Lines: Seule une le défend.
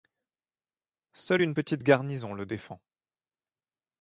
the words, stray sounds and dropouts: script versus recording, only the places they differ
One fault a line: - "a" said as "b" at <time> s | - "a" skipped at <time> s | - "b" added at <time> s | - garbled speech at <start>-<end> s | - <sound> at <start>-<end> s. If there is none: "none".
- "petite garnison" added at 1.5 s